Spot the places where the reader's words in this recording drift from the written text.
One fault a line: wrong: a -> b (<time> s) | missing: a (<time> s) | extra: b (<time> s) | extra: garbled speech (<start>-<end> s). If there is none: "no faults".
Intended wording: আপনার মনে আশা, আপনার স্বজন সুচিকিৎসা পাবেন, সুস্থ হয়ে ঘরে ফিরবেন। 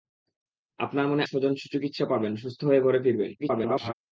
missing: আশা আপনার (1.2 s)
extra: garbled speech (3.4-3.9 s)